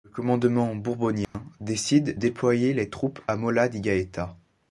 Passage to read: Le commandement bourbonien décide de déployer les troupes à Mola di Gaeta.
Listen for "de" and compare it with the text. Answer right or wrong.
wrong